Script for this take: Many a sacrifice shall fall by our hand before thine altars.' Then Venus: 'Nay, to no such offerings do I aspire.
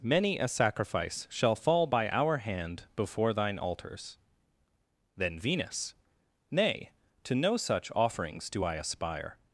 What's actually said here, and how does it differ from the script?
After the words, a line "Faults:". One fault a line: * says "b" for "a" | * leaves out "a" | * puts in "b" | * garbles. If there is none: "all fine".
Many a sacrifice shall fall by our hand before thine altars.' Then Venus: 'Nay, to no such offerings do I aspire.
Faults:
all fine